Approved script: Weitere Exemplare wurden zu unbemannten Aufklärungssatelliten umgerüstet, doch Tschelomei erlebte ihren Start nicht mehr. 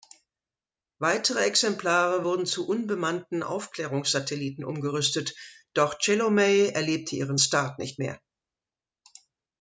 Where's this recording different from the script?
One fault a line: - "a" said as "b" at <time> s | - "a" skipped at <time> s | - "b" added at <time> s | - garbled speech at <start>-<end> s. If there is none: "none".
none